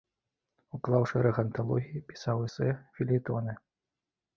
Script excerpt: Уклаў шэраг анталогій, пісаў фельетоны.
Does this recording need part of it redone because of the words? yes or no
yes